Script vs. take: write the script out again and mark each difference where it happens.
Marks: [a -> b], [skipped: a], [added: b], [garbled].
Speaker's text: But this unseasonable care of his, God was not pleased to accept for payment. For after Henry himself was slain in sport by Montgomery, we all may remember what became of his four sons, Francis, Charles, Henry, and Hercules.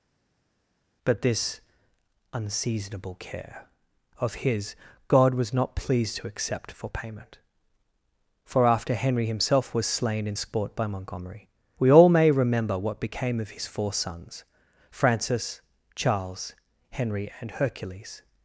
But this unseasonable care of his, God was not pleased to accept for payment. For after Henry himself was slain in sport by Montgomery, we all may remember what became of his four sons, Francis, Charles, Henry, and Hercules.